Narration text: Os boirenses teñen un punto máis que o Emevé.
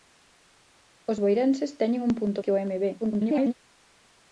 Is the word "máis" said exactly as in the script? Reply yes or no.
no